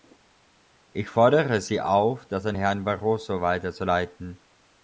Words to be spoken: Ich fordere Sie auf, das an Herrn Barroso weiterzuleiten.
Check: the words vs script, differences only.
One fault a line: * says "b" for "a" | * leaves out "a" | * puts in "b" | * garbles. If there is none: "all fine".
all fine